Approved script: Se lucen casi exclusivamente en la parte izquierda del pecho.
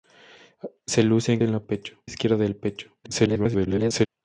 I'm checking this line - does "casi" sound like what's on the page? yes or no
no